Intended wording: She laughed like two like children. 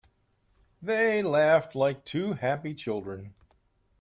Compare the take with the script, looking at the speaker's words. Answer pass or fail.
fail